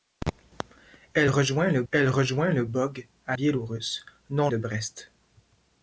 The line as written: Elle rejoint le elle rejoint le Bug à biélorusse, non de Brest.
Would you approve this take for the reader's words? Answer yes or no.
yes